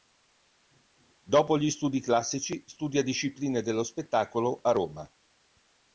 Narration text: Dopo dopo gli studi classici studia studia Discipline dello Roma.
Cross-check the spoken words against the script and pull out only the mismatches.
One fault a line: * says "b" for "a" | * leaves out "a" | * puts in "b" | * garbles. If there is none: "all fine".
* leaves out "dopo"
* leaves out "studia"
* puts in "Spettacolo a"